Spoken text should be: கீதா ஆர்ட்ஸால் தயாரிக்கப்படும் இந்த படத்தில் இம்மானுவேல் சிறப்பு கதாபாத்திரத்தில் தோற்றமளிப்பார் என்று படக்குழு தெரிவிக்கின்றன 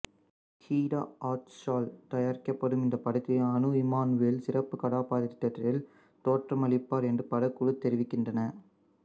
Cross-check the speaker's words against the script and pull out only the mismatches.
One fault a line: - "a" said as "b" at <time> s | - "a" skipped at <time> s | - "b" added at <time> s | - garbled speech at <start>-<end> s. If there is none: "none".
- "அனு" added at 3.5 s